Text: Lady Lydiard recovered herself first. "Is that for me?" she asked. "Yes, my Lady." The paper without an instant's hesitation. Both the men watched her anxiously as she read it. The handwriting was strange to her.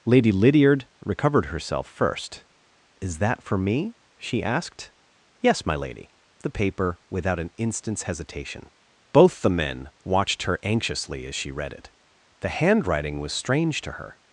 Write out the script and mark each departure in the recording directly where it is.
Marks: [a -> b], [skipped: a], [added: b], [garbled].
Lady Lydiard recovered herself first. "Is that for me?" she asked. "Yes, my Lady." The paper without an instant's hesitation. Both the men watched her anxiously as she read it. The handwriting was strange to her.